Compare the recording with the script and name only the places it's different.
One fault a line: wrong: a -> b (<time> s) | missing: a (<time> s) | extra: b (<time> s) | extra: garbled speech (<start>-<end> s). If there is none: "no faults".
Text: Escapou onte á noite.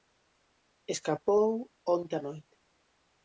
no faults